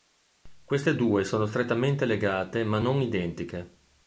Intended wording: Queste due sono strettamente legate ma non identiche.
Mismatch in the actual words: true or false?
false